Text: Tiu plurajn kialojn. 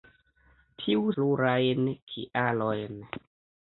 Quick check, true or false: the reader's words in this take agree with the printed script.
true